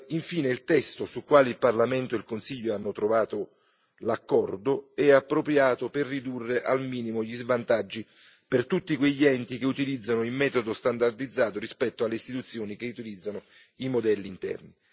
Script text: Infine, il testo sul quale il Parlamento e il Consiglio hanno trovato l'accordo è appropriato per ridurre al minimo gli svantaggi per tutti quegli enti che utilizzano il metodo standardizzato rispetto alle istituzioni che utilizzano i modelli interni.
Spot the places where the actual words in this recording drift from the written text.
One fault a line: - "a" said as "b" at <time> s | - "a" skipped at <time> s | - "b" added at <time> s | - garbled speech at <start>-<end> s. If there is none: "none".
none